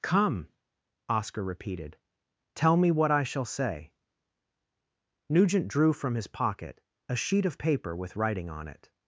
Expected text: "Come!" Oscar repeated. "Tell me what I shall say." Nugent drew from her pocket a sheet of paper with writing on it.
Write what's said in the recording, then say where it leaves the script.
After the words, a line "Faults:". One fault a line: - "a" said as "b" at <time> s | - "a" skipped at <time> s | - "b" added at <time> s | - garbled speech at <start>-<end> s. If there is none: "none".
"Come!" Oscar repeated. "Tell me what I shall say." Nugent drew from his pocket a sheet of paper with writing on it.
Faults:
- "her" said as "his" at 6.2 s